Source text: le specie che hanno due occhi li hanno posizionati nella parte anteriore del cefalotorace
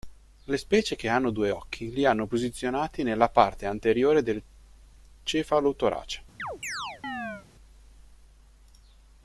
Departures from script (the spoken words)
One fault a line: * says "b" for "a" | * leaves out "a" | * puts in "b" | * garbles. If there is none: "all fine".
all fine